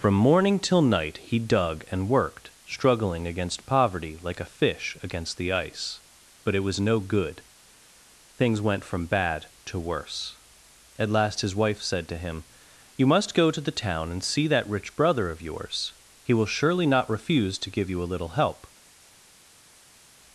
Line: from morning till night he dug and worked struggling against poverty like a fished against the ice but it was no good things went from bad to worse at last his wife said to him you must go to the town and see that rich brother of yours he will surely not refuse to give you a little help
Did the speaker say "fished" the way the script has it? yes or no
no